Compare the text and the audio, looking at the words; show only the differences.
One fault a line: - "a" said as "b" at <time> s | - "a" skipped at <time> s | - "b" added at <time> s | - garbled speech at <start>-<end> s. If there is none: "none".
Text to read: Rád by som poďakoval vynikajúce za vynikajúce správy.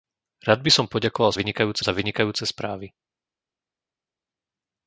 none